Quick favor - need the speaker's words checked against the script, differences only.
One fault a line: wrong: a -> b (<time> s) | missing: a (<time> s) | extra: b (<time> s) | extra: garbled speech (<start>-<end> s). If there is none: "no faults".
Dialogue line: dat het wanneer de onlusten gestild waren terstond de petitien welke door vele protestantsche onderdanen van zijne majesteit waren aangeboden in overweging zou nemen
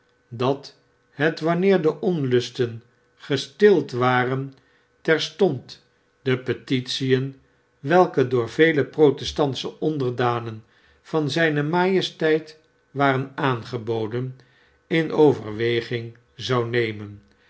no faults